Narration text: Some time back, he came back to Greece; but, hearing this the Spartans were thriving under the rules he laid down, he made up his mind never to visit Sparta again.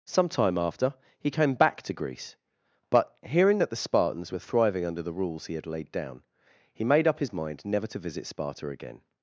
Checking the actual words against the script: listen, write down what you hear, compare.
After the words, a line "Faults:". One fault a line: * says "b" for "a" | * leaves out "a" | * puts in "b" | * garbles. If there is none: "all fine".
Some time after, he came back to Greece; but, hearing that the Spartans were thriving under the rules he had laid down, he made up his mind never to visit Sparta again.
Faults:
* says "after" for "back"
* says "that" for "this"
* puts in "had"